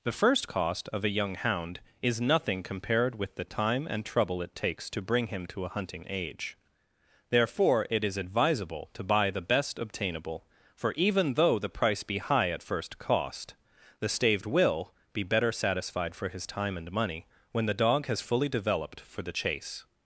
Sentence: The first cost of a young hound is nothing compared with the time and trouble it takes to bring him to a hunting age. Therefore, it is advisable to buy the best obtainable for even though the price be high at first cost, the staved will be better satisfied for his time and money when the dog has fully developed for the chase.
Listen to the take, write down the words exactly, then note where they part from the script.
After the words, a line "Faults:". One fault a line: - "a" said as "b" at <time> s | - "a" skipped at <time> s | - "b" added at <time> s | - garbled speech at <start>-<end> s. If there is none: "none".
The first cost of a young hound is nothing compared with the time and trouble it takes to bring him to a hunting age. Therefore, it is advisable to buy the best obtainable for even though the price be high at first cost, the staved will be better satisfied for his time and money when the dog has fully developed for the chase.
Faults:
none